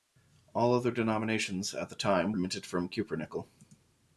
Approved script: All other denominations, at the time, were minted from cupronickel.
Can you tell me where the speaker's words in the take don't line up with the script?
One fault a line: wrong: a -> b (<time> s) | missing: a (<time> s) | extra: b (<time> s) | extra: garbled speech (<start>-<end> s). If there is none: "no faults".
missing: were (2.3 s)